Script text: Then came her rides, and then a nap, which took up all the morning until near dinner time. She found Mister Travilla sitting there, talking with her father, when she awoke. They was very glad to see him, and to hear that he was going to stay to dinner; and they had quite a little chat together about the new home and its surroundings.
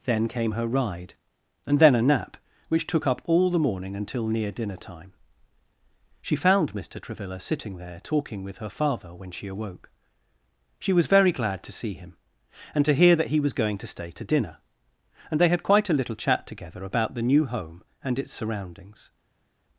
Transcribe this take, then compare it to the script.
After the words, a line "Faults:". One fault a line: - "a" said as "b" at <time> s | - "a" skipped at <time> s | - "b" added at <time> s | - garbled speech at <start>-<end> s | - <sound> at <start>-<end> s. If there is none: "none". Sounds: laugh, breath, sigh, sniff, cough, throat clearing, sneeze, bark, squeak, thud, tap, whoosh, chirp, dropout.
Then came her ride, and then a nap, which took up all the morning until near dinner time. She found Mister Travilla sitting there, talking with her father, when she awoke. She was very glad to see him, and to hear that he was going to stay to dinner; and they had quite a little chat together about the new home and its surroundings.
Faults:
- "rides" said as "ride" at 0.7 s
- "They" said as "She" at 10.8 s